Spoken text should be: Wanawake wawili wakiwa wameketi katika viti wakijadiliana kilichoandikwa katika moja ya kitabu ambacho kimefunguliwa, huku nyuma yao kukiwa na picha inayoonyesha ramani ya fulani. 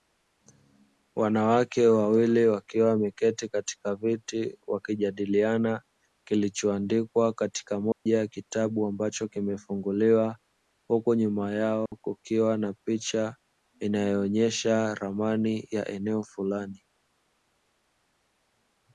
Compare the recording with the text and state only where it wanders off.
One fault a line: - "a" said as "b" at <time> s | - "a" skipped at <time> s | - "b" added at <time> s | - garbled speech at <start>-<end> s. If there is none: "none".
- "eneo" added at 15.9 s